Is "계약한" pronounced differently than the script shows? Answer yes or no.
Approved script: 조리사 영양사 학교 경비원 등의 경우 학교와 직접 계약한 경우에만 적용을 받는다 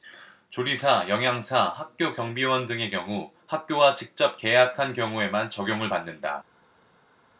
no